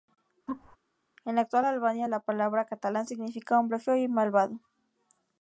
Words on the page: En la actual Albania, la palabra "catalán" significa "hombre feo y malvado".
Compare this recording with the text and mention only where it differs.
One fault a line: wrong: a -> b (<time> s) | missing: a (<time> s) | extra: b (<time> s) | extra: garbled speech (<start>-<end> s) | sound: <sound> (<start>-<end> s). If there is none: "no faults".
sound: laugh (0.5-0.8 s)